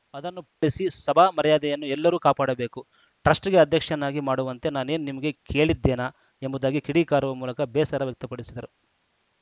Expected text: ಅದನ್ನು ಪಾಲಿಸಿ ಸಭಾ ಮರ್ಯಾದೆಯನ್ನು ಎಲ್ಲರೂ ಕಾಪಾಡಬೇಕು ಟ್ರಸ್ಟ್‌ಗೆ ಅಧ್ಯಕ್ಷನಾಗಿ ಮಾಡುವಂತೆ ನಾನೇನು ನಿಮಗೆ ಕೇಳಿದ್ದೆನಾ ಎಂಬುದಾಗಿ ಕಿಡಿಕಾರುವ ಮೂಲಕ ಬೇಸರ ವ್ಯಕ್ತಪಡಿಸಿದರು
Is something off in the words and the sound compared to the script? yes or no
yes